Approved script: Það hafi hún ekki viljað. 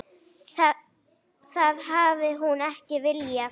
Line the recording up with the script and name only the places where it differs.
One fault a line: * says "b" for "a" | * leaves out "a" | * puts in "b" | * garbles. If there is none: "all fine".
all fine